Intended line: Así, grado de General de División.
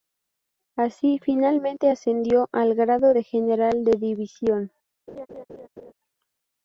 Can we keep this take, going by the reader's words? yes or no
no